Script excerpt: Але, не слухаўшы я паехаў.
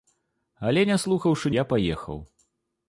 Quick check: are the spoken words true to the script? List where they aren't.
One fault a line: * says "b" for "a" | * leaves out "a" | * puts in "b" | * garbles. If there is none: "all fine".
all fine